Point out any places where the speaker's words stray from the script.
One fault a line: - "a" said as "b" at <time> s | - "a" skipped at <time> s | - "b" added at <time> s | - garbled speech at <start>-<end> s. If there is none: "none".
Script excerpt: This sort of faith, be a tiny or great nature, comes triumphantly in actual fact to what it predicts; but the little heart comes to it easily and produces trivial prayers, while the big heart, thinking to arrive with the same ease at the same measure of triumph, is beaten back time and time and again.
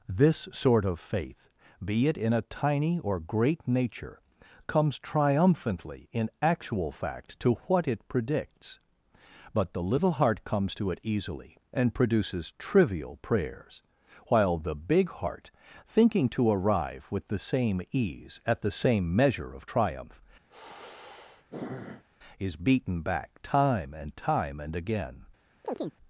- "it in" added at 2.1 s